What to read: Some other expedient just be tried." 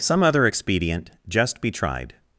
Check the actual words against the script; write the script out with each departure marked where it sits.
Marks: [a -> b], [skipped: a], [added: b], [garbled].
Some other expedient just be tried."